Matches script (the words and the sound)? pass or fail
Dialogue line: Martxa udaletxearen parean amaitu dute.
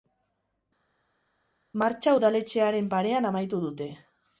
pass